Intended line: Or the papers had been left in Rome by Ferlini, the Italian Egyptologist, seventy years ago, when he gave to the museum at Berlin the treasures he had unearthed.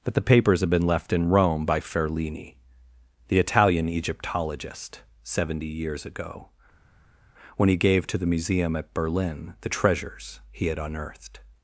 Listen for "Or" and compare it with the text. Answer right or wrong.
wrong